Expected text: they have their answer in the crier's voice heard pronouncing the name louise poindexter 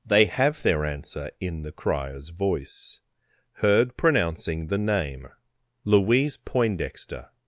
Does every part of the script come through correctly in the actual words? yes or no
yes